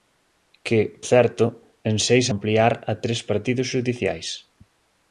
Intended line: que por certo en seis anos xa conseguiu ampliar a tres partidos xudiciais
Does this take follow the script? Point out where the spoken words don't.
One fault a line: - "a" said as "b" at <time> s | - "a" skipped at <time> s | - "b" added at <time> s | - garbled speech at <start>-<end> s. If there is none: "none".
- "por" skipped at 0.8 s
- "anos xa conseguiu" skipped at 2.3 s